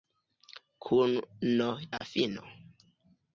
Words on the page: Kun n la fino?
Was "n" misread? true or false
false